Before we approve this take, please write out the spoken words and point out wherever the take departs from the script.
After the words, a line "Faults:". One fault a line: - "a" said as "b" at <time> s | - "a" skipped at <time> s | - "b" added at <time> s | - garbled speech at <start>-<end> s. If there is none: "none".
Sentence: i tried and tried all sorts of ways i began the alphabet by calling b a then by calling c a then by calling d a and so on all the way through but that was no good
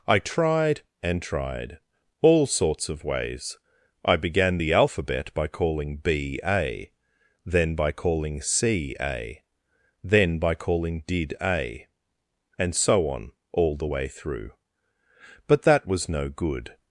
i tried and tried all sorts of ways i began the alphabet by calling b a then by calling c a then by calling did a and so on all the way through but that was no good
Faults:
- "d" said as "did" at 11.1 s